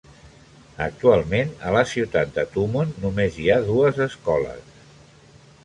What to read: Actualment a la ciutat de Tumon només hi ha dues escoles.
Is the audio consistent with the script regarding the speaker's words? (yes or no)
yes